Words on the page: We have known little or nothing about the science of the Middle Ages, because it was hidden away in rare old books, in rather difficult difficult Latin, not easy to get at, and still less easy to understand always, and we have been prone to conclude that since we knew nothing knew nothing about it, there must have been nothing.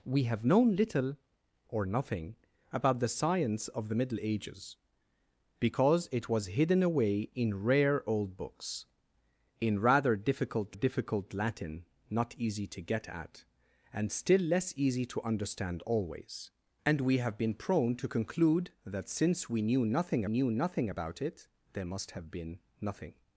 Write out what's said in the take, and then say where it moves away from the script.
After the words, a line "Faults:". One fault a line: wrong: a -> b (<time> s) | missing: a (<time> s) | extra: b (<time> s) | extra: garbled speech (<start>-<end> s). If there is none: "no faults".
We have known little or nothing about the science of the Middle Ages, because it was hidden away in rare old books, in rather difficult difficult Latin, not easy to get at, and still less easy to understand always, and we have been prone to conclude that since we knew nothing knew nothing about it, there must have been nothing.
Faults:
no faults